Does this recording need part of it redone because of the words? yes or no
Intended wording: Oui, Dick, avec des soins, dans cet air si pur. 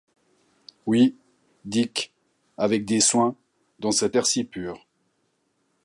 no